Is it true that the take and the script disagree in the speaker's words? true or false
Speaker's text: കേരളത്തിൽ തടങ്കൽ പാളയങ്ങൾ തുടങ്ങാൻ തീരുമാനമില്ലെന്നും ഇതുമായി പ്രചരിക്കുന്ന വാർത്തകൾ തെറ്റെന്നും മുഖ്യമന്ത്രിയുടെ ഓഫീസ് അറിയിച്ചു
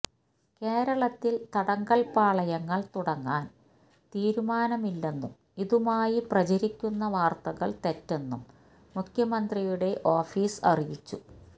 false